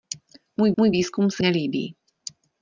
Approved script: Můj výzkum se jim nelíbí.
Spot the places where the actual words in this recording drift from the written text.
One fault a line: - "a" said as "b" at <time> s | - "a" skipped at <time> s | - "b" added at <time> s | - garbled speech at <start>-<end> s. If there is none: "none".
- "můj" added at 0.8 s
- "jim" skipped at 1.4 s